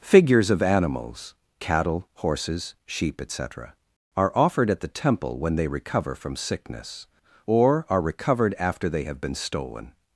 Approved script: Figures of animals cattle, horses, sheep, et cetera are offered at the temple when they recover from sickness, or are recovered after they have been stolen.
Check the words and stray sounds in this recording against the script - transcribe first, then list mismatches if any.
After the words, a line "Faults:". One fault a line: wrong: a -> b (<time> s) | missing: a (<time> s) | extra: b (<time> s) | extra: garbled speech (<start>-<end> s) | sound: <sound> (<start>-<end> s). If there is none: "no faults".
Figures of animals cattle, horses, sheep, et cetera are offered at the temple when they recover from sickness, or are recovered after they have been stolen.
Faults:
no faults